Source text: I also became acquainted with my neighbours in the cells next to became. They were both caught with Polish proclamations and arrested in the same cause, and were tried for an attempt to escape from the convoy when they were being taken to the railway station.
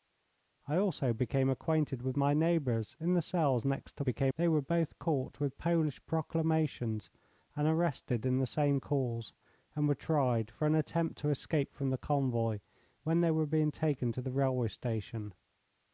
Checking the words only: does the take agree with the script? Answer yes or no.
yes